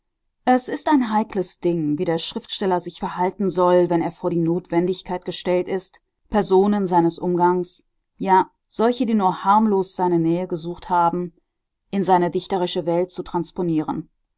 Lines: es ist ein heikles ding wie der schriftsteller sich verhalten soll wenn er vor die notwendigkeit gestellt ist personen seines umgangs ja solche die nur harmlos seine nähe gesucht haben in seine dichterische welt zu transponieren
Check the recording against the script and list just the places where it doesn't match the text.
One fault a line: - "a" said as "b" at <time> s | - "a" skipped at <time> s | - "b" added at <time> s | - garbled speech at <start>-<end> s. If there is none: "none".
none